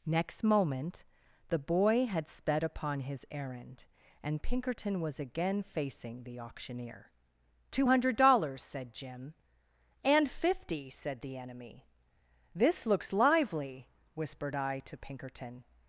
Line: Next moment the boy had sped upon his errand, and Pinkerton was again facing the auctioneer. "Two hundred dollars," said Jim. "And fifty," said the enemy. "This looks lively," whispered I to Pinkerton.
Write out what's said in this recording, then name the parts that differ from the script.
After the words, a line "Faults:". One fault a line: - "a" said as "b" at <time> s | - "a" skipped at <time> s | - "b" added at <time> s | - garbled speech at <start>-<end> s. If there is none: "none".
Next moment the boy had sped upon his errand, and Pinkerton was again facing the auctioneer. "Two hundred dollars," said Jim. "And fifty," said the enemy. "This looks lively," whispered I to Pinkerton.
Faults:
none